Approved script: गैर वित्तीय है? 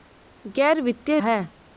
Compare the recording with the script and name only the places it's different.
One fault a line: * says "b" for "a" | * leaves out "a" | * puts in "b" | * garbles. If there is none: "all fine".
all fine